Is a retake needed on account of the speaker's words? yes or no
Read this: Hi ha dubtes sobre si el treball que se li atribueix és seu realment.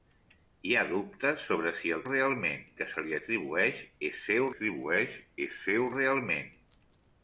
yes